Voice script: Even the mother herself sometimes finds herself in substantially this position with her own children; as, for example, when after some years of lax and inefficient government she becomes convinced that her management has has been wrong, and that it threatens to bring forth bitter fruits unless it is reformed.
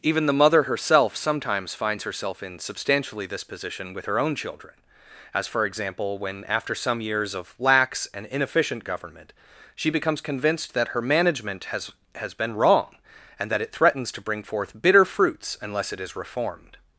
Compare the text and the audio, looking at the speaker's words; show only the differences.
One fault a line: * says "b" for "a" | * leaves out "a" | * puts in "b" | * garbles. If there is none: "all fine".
all fine